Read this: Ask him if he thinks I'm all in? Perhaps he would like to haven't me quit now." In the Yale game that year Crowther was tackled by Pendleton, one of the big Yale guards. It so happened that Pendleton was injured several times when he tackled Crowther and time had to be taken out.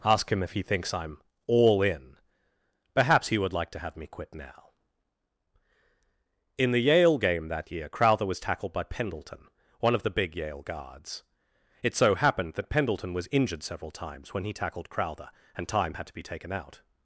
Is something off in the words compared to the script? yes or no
yes